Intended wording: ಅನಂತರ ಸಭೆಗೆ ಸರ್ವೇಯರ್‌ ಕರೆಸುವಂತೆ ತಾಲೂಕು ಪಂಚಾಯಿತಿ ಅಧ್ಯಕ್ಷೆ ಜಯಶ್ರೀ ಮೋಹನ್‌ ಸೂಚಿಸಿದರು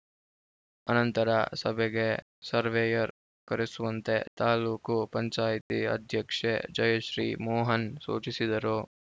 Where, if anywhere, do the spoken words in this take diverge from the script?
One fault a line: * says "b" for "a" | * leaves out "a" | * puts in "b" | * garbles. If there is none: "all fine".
all fine